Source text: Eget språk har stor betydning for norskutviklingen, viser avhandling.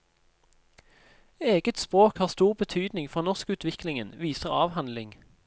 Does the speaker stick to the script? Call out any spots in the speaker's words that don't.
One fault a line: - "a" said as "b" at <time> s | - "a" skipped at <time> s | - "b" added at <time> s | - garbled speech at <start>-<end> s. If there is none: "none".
none